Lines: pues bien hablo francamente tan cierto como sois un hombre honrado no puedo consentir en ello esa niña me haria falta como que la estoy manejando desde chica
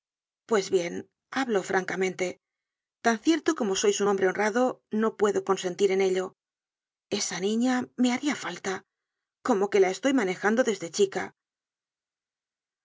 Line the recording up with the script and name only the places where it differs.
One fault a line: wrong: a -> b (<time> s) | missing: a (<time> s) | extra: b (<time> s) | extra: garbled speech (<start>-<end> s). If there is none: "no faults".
no faults